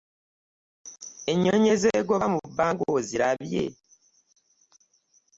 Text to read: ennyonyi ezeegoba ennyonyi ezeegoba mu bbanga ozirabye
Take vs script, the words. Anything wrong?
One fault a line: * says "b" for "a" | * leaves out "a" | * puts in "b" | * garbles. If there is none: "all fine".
* leaves out "ennyonyi ezeegoba"